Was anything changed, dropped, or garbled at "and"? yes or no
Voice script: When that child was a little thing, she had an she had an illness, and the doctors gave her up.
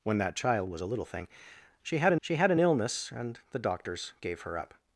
no